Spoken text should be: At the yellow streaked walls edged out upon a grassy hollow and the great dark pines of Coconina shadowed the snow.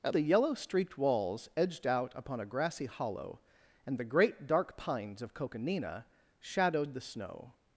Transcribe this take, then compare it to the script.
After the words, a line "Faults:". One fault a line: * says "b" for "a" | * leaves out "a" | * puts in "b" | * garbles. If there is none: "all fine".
At the yellow streaked walls edged out upon a grassy hollow and the great dark pines of Coconina shadowed the snow.
Faults:
all fine